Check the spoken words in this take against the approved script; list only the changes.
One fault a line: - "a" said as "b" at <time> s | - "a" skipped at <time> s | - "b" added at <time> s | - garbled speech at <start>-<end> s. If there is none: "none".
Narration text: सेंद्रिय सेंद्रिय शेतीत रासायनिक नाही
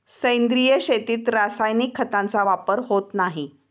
- "सेंद्रिय" skipped at 0.8 s
- "खतांचा वापर होत" added at 1.9 s